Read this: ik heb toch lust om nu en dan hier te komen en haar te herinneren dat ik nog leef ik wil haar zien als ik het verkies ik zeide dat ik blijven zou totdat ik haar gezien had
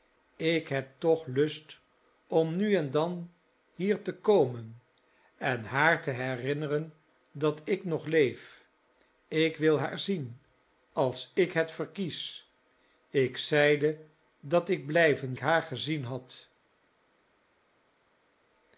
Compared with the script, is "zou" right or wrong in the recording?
wrong